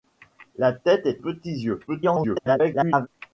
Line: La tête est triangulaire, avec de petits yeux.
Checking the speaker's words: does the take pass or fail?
fail